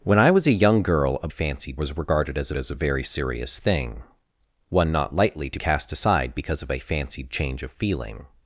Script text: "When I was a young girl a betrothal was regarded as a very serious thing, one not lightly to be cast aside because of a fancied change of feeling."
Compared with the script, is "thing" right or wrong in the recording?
right